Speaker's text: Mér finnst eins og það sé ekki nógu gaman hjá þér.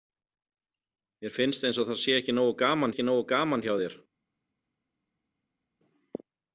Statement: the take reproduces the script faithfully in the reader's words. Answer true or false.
false